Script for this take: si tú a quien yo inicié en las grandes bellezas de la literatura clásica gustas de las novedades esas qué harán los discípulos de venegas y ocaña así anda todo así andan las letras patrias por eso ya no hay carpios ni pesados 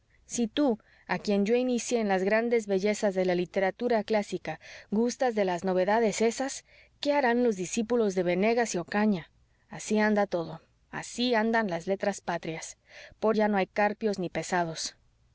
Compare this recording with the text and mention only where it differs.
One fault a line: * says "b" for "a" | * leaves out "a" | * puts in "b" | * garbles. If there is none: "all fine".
* leaves out "eso"